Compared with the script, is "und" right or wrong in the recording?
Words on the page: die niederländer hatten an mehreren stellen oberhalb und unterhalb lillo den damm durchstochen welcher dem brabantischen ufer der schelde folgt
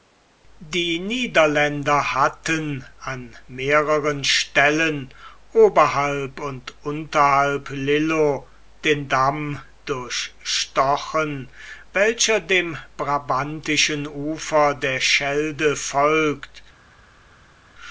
right